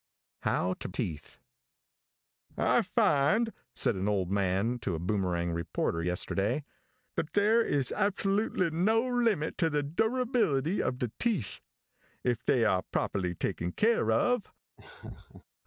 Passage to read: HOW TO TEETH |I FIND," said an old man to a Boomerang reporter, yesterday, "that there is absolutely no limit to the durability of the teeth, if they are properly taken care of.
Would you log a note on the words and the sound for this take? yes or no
yes